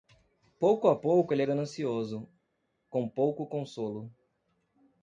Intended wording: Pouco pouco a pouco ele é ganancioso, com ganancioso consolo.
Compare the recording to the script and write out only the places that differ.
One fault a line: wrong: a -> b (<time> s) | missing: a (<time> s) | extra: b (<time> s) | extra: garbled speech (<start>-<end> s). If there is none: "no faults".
missing: pouco (0.9 s)
wrong: ganancioso -> pouco (3.1 s)